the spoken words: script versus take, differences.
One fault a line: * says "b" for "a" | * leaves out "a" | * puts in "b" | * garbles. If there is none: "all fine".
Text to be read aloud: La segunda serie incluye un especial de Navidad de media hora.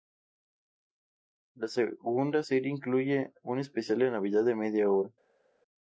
all fine